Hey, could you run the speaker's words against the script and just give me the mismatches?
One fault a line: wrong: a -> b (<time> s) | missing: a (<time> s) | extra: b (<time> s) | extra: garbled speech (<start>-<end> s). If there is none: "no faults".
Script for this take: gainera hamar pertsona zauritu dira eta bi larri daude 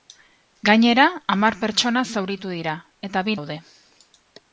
missing: larri (3.4 s)